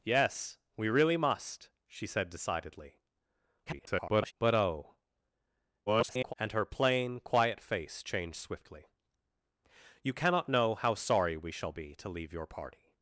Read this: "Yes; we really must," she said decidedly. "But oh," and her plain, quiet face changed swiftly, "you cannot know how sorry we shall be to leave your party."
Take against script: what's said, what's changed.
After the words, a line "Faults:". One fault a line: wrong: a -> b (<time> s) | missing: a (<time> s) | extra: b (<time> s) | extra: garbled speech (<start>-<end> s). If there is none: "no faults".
"Yes; we really must," she said decidedly. [garbled] "But oh," [garbled] and her plain, quiet face changed swiftly, "you cannot know how sorry we shall be to leave your party."
Faults:
extra: garbled speech (3.7-4.3 s)
extra: garbled speech (5.9-6.3 s)